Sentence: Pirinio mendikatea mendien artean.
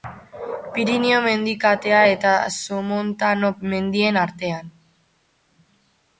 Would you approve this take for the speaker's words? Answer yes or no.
no